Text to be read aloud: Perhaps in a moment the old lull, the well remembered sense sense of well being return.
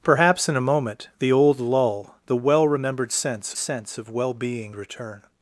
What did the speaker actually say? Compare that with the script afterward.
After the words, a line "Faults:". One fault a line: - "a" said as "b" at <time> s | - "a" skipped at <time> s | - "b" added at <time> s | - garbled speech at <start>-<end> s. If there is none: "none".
Perhaps in a moment the old lull, the well remembered sense sense of well being return.
Faults:
none